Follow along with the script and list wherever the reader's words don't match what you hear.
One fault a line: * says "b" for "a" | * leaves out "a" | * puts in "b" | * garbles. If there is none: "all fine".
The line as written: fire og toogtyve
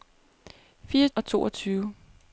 all fine